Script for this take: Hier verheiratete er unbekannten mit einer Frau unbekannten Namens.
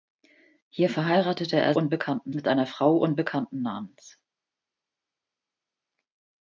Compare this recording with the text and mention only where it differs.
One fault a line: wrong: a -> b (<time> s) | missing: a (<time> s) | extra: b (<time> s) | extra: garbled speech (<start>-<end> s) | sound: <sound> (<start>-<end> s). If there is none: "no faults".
no faults